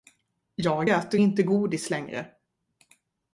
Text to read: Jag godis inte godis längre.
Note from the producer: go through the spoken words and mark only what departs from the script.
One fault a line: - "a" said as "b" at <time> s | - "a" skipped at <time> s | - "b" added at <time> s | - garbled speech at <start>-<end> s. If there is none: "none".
- "godis" said as "äter" at 0.9 s